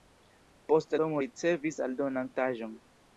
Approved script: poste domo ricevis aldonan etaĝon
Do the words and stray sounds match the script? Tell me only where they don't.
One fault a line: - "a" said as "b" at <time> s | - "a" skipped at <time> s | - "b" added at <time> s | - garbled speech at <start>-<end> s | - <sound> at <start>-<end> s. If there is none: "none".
none